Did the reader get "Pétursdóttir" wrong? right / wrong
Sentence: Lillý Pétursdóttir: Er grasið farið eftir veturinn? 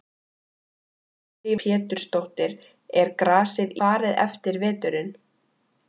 right